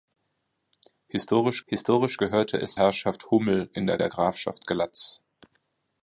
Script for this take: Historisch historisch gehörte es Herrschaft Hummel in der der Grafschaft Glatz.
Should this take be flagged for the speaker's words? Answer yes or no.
no